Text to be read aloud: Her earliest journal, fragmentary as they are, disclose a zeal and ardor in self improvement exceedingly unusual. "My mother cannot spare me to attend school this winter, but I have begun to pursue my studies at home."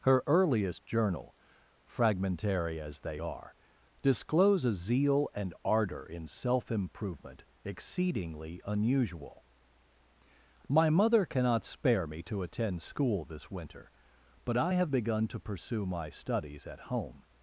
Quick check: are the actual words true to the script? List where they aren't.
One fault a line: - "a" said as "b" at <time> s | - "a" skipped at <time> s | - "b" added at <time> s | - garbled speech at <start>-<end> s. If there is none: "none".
none